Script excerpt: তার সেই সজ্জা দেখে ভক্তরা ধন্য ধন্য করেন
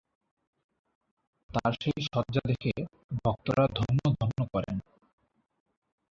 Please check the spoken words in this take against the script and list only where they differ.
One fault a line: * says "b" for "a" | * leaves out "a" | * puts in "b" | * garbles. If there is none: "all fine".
all fine